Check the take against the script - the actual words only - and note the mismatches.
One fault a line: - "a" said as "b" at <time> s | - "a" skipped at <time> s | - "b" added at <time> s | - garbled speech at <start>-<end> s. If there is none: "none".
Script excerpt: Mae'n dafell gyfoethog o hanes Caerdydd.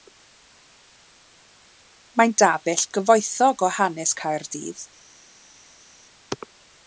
none